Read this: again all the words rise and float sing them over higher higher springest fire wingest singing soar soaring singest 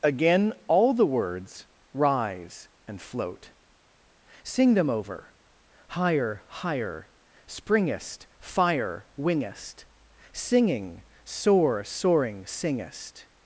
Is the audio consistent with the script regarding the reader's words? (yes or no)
yes